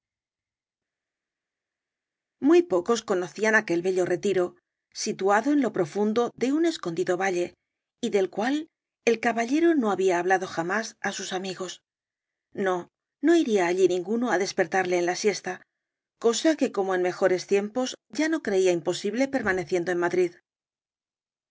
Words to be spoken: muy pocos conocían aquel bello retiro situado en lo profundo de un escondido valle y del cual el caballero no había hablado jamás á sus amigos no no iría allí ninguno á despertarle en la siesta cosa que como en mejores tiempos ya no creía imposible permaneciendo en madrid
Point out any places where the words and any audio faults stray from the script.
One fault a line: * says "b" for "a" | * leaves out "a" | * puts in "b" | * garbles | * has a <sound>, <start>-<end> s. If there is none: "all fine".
all fine